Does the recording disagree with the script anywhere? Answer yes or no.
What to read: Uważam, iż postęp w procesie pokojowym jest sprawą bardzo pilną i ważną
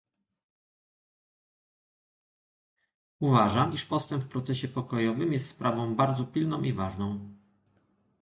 no